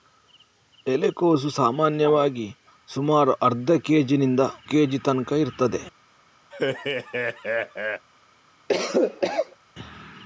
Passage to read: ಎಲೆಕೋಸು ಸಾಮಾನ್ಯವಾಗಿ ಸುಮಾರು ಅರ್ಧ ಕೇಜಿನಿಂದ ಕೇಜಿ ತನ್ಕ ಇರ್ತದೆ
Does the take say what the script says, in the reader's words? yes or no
yes